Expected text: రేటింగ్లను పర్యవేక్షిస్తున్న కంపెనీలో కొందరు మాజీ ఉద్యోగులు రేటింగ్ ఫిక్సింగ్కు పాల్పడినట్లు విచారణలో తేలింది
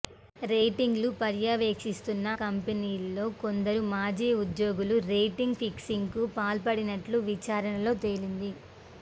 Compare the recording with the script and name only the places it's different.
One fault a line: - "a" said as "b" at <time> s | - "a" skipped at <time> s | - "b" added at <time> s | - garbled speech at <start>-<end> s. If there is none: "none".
none